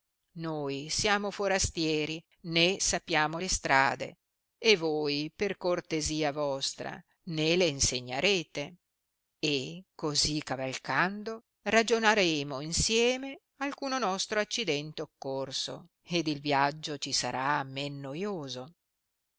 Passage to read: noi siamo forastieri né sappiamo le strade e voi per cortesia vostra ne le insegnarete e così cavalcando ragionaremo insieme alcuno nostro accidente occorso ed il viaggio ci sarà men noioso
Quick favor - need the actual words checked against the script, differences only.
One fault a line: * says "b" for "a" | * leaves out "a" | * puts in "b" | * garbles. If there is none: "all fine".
all fine